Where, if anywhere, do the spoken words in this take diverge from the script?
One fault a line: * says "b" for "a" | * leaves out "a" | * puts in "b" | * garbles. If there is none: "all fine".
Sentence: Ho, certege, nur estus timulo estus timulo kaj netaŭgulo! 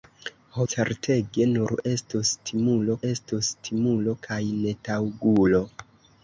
all fine